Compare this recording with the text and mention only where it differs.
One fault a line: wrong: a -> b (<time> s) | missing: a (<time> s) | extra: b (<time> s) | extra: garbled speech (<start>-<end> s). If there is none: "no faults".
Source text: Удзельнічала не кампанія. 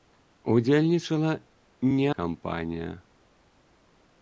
no faults